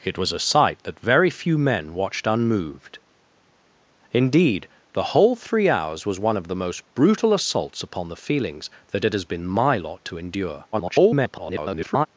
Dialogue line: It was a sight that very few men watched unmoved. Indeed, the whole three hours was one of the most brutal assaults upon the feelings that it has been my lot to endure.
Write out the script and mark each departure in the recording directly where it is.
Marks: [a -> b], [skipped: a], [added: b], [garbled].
It was a sight that very few men watched unmoved. Indeed, the whole three hours was one of the most brutal assaults upon the feelings that it has been my lot to endure. [garbled]